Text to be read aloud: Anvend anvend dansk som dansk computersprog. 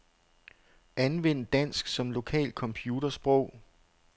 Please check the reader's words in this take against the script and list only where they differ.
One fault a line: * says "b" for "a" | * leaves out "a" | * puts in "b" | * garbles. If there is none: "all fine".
* leaves out "anvend"
* says "lokalt" for "dansk"